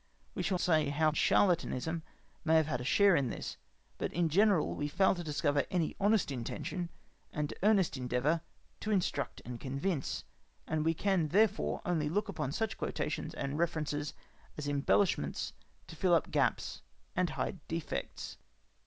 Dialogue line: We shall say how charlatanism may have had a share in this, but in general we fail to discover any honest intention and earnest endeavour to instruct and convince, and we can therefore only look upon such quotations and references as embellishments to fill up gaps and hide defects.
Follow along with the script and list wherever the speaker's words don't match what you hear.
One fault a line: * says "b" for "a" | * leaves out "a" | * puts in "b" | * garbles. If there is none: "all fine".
all fine